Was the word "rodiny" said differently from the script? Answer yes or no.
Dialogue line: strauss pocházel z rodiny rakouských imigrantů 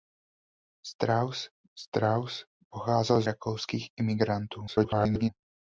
yes